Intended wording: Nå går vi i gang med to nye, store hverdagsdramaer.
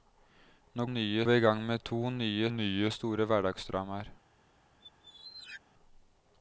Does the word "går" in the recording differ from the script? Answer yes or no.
yes